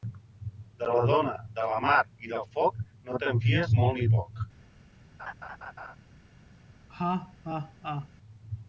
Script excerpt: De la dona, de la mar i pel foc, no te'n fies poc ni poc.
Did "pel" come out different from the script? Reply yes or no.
yes